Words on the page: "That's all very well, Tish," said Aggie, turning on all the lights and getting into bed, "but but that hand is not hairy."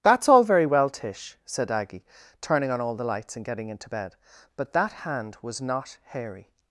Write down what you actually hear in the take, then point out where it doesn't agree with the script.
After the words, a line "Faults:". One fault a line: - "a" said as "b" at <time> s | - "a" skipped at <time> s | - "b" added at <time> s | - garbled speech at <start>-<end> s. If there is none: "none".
"That's all very well, Tish," said Aggie, turning on all the lights and getting into bed, "but that hand was not hairy."
Faults:
- "but" skipped at 4.7 s
- "is" said as "was" at 5.4 s